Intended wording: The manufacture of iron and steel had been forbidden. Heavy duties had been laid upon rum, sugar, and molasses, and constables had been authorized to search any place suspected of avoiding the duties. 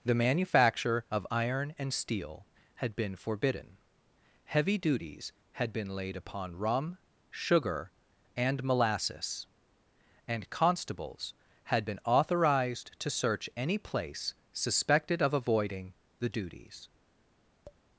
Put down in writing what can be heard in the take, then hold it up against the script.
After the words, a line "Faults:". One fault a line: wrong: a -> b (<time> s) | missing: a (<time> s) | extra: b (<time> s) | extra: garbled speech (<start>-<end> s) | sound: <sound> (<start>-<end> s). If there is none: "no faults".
The manufacture of iron and steel had been forbidden. Heavy duties had been laid upon rum, sugar, and molasses, and constables had been authorized to search any place suspected of avoiding the duties.
Faults:
sound: tap (17.6-17.8 s)